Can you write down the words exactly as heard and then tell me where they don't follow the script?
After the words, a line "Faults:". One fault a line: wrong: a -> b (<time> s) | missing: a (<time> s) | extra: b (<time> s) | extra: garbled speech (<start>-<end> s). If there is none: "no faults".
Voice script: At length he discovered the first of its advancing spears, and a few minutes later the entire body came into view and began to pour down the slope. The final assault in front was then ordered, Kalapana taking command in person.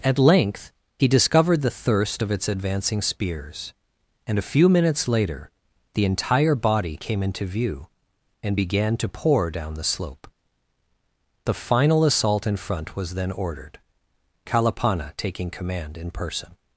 At length he discovered the thirst of its advancing spears, and a few minutes later the entire body came into view and began to pour down the slope. The final assault in front was then ordered, Kalapana taking command in person.
Faults:
wrong: first -> thirst (1.7 s)